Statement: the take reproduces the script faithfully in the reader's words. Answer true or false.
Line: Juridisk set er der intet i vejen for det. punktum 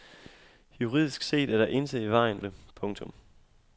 false